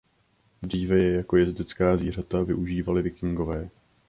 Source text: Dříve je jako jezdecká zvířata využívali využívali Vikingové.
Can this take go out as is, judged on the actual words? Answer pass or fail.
fail